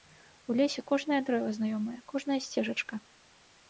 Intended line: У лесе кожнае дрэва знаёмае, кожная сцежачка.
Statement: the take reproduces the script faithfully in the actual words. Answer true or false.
true